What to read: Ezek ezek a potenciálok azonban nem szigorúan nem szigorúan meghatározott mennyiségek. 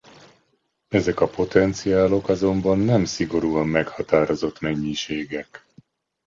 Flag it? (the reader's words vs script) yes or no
yes